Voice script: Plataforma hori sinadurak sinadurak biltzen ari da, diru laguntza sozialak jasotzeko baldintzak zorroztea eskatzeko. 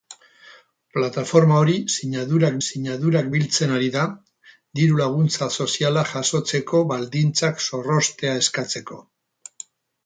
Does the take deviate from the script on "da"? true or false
false